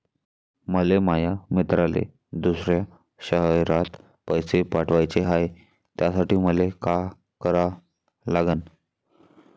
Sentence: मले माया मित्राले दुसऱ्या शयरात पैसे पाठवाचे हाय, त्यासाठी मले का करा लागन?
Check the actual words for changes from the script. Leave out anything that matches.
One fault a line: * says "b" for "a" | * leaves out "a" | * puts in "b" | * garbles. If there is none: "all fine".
all fine